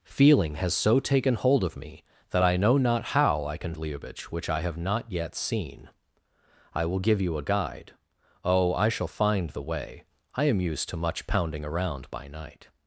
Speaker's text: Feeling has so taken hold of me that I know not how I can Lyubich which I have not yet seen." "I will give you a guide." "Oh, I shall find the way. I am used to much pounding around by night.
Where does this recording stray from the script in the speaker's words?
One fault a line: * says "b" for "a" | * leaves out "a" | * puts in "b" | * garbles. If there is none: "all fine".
all fine